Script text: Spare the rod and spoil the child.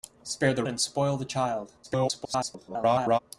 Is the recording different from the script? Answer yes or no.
yes